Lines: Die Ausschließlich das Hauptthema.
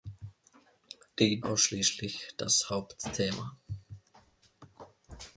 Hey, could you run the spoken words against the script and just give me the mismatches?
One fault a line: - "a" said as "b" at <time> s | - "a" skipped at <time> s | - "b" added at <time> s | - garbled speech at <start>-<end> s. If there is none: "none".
none